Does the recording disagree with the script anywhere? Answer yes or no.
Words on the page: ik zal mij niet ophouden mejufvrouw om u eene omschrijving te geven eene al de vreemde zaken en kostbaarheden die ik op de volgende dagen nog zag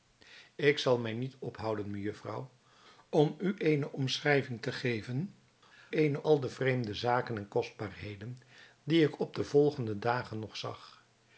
no